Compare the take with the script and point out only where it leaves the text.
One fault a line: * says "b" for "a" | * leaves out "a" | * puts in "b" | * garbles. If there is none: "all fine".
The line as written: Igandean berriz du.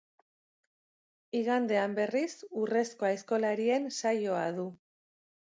* puts in "urrezko aizkolarien saioa"